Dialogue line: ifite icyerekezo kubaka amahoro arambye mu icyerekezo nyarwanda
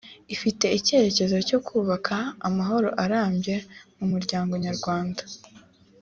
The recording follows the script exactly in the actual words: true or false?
false